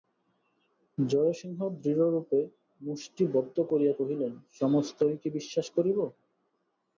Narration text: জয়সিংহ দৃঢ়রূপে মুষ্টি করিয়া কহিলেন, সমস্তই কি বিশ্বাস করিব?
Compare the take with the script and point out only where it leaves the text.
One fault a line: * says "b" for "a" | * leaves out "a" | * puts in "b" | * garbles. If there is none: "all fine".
* puts in "বদ্ধ"